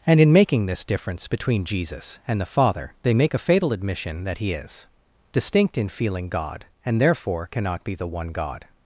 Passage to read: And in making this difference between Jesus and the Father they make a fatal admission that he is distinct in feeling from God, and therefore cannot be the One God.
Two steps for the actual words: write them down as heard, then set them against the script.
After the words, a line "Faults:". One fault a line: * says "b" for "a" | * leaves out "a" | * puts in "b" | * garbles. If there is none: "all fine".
And in making this difference between Jesus and the Father they make a fatal admission that he is distinct in feeling God, and therefore cannot be the One God.
Faults:
* leaves out "from"